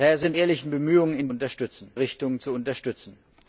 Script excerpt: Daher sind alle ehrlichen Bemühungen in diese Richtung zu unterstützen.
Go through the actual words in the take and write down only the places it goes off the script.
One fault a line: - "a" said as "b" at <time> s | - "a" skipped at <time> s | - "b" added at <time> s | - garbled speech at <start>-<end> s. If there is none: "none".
- "alle" skipped at 0.3 s
- "diese" said as "unterstützen" at 1.3 s